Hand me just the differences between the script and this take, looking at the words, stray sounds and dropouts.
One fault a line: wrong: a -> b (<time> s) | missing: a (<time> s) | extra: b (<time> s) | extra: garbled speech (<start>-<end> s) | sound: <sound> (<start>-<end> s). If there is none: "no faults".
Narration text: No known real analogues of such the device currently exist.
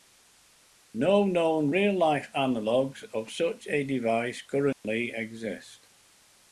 extra: life (1.9 s)
wrong: the -> a (3.7 s)
sound: dropout (4.7-4.8 s)